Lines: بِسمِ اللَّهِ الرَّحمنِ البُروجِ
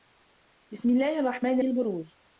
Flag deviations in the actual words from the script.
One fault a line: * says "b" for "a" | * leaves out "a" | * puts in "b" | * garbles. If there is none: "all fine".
all fine